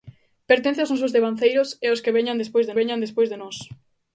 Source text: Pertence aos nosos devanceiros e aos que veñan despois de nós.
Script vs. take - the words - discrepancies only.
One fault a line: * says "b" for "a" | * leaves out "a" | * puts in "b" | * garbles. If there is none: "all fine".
* puts in "veñan despois de"